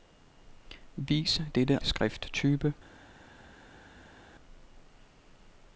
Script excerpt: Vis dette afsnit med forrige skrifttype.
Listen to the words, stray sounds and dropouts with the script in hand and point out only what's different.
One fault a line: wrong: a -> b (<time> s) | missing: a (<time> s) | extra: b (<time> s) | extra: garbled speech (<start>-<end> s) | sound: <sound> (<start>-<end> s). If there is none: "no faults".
missing: afsnit med forrige (1.8 s)